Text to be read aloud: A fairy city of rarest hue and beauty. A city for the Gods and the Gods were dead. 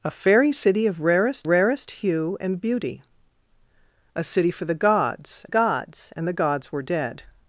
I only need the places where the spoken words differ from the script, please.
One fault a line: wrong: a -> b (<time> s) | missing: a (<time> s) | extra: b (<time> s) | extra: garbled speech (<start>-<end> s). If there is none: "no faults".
extra: rarest (1.5 s)
extra: Gods (5.5 s)